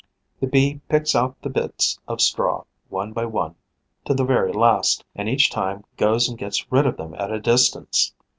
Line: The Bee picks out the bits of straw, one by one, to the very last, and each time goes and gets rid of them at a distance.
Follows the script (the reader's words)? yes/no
yes